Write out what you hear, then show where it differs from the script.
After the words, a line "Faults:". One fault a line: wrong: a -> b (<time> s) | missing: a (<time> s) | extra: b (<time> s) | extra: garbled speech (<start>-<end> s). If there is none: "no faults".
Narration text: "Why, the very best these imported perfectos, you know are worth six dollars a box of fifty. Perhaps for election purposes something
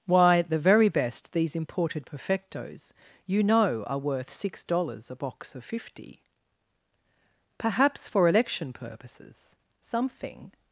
"Why, the very best these imported perfectos, you know are worth six dollars a box of fifty. Perhaps for election purposes something
Faults:
no faults